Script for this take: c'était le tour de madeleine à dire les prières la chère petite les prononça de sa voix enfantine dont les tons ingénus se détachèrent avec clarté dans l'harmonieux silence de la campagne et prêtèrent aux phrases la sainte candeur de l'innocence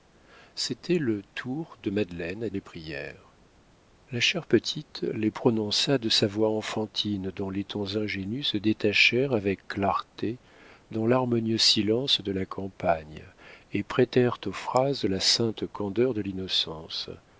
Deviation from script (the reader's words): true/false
true